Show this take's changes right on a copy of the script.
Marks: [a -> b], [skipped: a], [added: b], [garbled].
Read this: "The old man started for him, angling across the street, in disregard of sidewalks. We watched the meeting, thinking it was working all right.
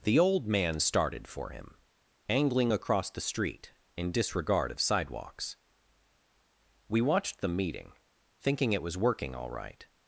"The old man started for him, angling across the street, in disregard of sidewalks. We watched the meeting, thinking it was working all right.